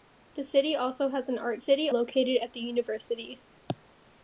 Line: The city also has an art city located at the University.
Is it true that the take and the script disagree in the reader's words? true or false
false